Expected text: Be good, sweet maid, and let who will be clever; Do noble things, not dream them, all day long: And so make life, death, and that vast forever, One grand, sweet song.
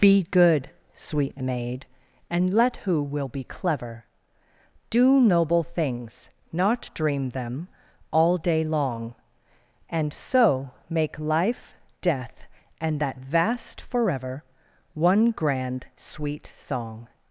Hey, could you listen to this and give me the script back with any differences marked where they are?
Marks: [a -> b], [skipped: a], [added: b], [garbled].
Be good, sweet maid, and let who will be clever; Do noble things, not dream them, all day long: And so make life, death, and that vast forever, One grand, sweet song.